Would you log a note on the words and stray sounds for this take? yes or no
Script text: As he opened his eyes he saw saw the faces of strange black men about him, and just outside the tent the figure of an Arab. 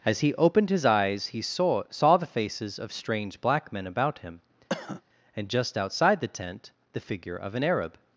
yes